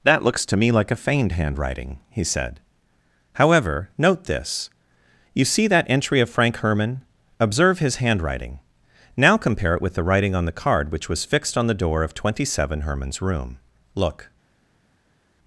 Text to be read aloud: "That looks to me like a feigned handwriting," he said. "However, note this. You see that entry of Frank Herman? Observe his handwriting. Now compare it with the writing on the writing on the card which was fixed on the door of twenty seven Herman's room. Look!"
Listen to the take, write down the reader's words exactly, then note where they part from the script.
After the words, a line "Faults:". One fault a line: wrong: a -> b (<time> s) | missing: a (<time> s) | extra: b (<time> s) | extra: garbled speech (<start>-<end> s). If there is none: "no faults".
"That looks to me like a feigned handwriting," he said. "However, note this. You see that entry of Frank Herman? Observe his handwriting. Now compare it with the writing on the card which was fixed on the door of twenty seven Herman's room. Look!"
Faults:
missing: writing on the (10.6 s)